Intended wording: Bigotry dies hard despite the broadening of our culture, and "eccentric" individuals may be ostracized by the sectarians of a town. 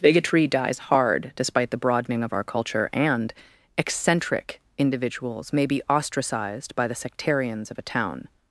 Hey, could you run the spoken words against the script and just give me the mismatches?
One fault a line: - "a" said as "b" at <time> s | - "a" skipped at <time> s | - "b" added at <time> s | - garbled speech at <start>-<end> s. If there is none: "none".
none